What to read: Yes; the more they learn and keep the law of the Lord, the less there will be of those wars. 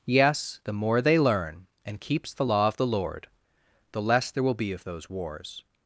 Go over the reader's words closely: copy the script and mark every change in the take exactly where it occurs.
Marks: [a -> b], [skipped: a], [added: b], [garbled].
Yes; the more they learn and [keep -> keeps] the law of the Lord, the less there will be of those wars.